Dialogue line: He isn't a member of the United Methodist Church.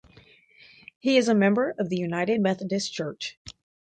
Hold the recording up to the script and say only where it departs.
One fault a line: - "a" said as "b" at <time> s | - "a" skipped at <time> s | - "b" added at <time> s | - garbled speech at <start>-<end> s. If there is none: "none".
- "isn't" said as "is" at 1.2 s